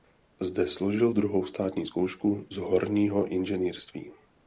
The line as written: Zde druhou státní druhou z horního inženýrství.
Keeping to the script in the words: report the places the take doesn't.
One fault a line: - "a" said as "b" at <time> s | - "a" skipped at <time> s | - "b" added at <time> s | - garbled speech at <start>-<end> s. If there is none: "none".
- "složil" added at 0.7 s
- "druhou" said as "zkoušku" at 1.8 s